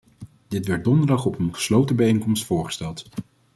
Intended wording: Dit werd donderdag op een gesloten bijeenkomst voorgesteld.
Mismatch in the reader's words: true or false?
false